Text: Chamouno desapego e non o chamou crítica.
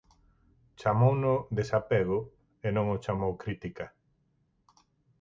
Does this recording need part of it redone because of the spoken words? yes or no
no